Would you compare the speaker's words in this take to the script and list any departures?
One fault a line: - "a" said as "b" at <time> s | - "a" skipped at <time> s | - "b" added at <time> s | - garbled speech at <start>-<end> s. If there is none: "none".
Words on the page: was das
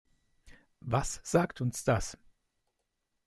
- "sagt uns" added at 1.2 s